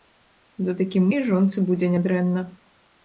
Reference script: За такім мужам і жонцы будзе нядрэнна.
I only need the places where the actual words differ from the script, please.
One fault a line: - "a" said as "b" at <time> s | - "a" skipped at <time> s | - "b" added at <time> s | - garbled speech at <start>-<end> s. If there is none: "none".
- "мужам" skipped at 1.1 s